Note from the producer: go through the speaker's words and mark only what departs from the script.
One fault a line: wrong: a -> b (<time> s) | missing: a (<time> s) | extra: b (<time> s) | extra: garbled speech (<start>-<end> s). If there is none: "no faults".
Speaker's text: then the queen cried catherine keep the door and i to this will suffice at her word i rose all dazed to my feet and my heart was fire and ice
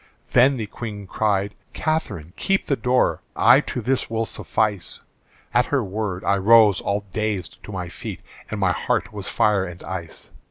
missing: and (3.2 s)